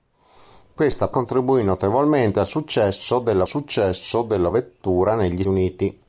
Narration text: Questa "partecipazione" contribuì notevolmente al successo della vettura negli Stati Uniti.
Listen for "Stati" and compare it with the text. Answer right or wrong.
wrong